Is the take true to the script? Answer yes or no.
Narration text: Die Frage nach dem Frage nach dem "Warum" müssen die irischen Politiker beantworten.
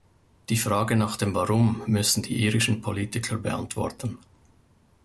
no